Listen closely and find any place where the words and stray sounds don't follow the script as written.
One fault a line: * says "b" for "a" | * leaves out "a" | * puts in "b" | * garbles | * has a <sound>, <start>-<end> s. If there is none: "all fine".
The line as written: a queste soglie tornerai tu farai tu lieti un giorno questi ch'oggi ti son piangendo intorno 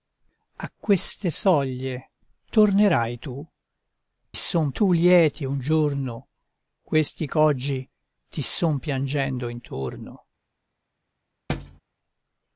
* says "son" for "farai"
* has a thud, 11.5-11.8 s